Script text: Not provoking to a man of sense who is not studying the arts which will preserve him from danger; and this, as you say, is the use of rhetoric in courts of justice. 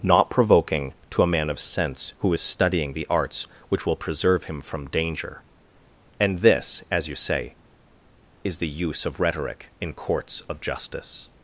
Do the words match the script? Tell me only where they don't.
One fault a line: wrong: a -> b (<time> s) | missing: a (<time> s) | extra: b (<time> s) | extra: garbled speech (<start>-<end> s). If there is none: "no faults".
missing: not (2.4 s)